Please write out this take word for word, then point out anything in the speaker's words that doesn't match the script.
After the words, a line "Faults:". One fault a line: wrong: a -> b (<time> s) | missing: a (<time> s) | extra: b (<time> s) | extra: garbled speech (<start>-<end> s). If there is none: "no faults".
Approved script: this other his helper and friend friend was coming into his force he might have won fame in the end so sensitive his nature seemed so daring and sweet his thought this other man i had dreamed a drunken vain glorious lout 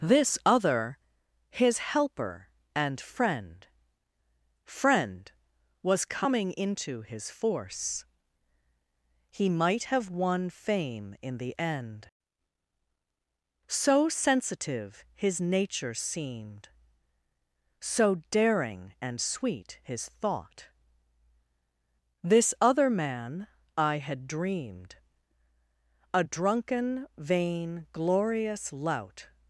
this other his helper and friend friend was coming into his force he might have won fame in the end so sensitive his nature seemed so daring and sweet his thought this other man i had dreamed a drunken vain glorious lout
Faults:
no faults